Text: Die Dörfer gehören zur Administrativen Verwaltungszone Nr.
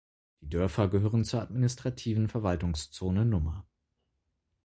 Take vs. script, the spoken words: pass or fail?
pass